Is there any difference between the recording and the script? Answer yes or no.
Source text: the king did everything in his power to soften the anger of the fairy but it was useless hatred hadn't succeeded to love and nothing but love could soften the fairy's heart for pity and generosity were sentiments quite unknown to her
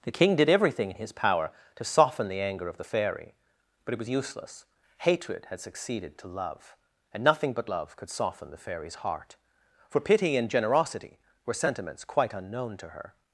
yes